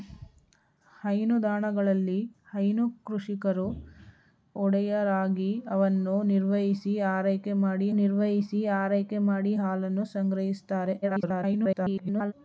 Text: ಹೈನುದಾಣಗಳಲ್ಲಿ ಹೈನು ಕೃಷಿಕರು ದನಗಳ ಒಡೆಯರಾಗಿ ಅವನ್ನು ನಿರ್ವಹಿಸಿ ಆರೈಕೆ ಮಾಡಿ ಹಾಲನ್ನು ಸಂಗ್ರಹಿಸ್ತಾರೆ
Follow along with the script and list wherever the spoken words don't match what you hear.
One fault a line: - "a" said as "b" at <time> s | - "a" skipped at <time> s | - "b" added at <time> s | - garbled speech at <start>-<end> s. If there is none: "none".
- "ದನಗಳ" skipped at 3.7 s
- "ನಿರ್ವಹಿಸಿ ಆರೈಕೆ ಮಾಡಿ" added at 8.0 s
- garbled speech at 11.0-12.3 s